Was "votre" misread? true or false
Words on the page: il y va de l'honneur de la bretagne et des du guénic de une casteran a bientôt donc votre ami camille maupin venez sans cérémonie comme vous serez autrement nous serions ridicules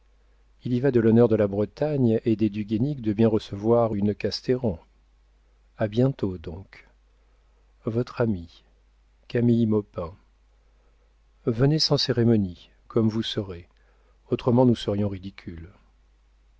false